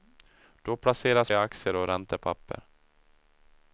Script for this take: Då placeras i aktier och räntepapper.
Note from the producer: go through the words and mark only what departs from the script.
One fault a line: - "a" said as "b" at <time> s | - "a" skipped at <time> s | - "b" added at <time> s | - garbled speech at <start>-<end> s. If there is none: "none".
none